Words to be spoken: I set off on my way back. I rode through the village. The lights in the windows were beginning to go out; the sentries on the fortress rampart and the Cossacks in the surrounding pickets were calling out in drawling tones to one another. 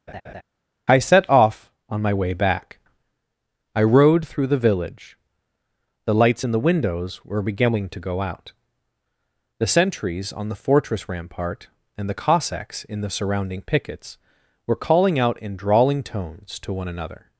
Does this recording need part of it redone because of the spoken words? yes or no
no